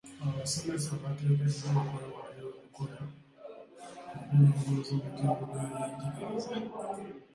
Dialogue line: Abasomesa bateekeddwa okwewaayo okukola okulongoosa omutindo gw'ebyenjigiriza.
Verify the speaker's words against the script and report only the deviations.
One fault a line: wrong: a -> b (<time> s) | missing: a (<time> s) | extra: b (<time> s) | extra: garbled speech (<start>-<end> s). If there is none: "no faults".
no faults